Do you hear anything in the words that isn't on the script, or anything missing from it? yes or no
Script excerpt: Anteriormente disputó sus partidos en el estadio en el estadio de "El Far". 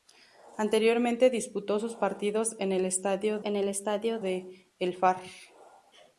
no